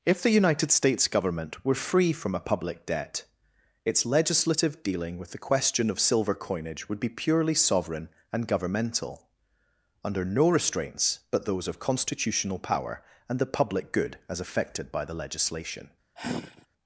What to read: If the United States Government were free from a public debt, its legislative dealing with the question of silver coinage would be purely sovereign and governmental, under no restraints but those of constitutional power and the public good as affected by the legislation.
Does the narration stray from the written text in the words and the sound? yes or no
yes